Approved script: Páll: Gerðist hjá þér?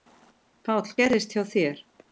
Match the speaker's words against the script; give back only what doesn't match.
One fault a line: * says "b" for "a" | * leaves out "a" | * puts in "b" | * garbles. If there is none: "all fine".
all fine